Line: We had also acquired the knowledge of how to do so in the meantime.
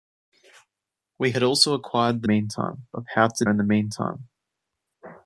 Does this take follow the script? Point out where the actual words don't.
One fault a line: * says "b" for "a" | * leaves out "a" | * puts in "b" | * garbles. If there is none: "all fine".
* says "meantime" for "knowledge"
* leaves out "do so"